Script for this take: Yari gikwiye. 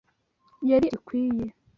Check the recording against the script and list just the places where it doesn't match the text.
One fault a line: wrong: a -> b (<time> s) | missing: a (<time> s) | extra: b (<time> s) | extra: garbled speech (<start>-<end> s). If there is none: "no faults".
no faults